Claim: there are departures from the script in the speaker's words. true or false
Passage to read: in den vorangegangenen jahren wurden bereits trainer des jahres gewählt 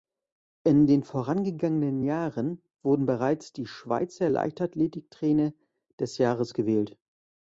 true